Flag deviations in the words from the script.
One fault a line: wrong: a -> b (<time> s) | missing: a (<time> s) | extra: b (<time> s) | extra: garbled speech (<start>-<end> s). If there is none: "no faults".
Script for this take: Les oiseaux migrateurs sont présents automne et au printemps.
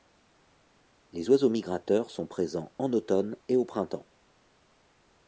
extra: en (2.8 s)